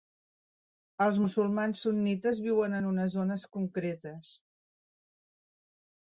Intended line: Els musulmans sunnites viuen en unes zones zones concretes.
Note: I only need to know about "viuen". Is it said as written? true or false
true